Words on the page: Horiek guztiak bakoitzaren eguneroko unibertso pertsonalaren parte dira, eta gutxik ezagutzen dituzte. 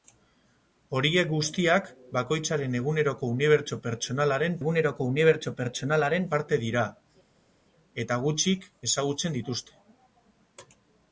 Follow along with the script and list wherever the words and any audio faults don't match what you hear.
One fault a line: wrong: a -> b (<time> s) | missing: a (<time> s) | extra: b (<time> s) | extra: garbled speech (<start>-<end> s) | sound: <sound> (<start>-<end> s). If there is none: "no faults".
extra: eguneroko unibertso pertsonalaren (4.6 s)